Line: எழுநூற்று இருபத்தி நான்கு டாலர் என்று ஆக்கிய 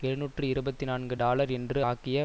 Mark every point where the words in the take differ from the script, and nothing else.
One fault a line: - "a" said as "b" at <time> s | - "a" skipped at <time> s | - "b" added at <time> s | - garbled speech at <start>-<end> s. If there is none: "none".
none